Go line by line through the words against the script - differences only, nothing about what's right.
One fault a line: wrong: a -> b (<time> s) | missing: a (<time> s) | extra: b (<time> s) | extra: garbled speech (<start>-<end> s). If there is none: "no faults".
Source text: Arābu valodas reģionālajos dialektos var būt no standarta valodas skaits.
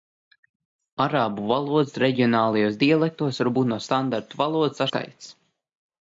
no faults